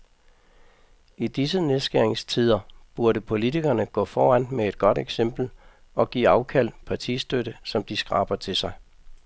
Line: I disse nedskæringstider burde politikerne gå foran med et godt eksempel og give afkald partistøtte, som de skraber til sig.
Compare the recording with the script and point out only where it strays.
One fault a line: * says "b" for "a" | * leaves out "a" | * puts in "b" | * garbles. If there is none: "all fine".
all fine